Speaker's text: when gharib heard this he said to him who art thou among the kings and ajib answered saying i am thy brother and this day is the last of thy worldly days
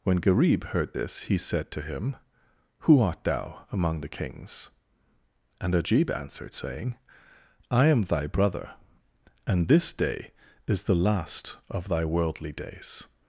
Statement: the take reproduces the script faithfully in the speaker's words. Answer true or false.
true